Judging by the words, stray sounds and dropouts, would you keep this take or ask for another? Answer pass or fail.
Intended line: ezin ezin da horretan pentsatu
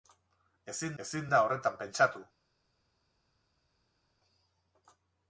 pass